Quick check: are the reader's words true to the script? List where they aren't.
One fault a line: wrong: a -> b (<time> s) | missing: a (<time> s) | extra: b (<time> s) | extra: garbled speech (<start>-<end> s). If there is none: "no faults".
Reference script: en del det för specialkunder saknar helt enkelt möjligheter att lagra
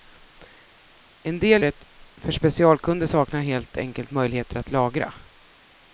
no faults